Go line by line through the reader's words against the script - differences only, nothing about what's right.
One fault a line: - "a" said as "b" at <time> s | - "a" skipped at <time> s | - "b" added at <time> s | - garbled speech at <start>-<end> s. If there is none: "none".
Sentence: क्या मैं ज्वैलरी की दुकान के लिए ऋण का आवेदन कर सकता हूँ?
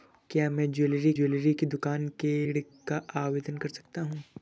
- "ज्वैलरी" added at 1.1 s
- "लिए" skipped at 2.3 s